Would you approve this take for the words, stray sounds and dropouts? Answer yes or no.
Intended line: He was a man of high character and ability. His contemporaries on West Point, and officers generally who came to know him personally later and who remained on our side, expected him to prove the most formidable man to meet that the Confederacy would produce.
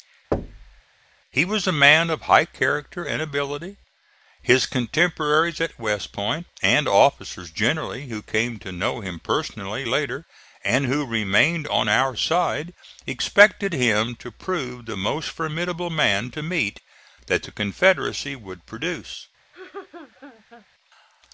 no